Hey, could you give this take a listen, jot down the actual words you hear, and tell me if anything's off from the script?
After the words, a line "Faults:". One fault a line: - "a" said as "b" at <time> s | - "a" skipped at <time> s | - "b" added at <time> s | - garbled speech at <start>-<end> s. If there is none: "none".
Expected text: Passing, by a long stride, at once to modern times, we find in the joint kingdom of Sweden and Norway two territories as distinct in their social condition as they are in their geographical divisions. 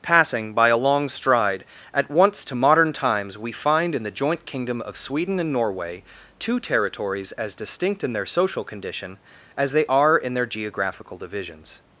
Passing, by a long stride, at once to modern times, we find in the joint kingdom of Sweden and Norway two territories as distinct in their social condition as they are in their geographical divisions.
Faults:
none